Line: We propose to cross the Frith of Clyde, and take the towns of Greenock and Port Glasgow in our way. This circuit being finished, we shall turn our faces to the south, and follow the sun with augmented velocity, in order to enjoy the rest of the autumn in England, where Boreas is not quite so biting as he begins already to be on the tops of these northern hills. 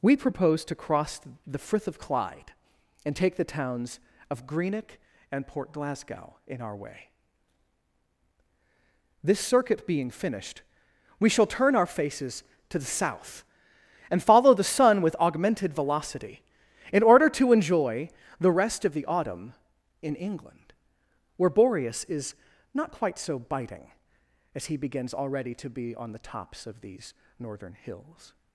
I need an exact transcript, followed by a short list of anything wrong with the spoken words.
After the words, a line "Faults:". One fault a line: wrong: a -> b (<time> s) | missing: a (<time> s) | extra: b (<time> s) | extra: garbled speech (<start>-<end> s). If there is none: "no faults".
We propose to cross the Frith of Clyde, and take the towns of Greenock and Port Glasgow in our way. This circuit being finished, we shall turn our faces to the south, and follow the sun with augmented velocity, in order to enjoy the rest of the autumn in England, where Boreas is not quite so biting as he begins already to be on the tops of these northern hills.
Faults:
no faults